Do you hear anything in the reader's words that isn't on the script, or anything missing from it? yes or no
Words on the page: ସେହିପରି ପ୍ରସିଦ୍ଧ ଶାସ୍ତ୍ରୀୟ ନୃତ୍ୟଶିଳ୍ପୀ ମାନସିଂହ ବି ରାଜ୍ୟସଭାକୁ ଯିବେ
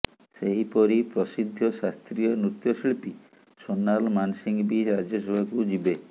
yes